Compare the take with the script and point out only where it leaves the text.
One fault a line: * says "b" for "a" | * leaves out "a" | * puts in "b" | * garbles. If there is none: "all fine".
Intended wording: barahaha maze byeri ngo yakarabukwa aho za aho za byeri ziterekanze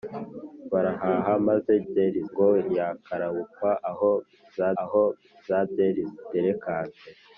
all fine